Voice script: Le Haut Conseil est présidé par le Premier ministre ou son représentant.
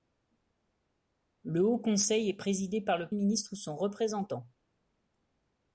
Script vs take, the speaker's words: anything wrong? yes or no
yes